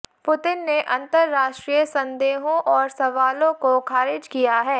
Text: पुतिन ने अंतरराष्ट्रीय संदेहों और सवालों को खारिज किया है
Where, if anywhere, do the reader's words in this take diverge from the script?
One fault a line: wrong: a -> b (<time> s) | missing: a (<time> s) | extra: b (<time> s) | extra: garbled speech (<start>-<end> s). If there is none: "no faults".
no faults